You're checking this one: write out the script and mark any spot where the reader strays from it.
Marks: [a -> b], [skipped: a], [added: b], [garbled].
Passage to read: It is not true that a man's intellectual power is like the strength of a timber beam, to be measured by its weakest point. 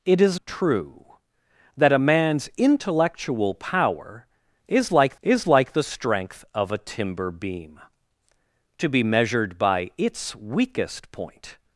It is [skipped: not] true that a man's intellectual power is like [added: is like] the strength of a timber beam, to be measured by its weakest point.